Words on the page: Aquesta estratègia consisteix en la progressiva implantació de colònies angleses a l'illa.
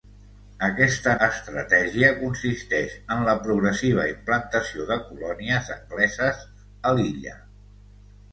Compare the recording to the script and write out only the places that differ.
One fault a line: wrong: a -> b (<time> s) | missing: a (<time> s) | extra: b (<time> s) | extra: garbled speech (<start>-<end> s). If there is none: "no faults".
no faults